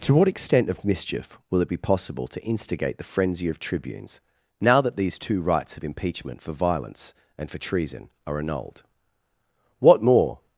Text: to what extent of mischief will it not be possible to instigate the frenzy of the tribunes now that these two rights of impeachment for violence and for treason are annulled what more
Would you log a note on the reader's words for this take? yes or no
yes